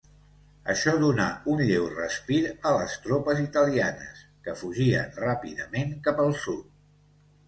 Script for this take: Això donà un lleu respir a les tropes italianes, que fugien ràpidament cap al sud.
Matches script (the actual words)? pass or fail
pass